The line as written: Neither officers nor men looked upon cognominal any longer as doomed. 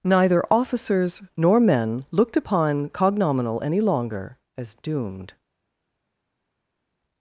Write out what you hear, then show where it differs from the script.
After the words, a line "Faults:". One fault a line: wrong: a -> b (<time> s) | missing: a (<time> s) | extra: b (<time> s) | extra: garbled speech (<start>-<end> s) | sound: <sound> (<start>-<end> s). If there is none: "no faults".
Neither officers nor men looked upon cognominal any longer as doomed.
Faults:
no faults